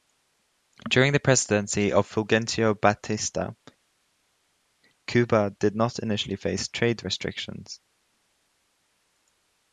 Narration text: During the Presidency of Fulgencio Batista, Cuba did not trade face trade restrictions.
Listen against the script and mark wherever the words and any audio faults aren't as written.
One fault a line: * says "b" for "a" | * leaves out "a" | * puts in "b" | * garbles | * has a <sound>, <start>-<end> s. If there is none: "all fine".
* says "initially" for "trade"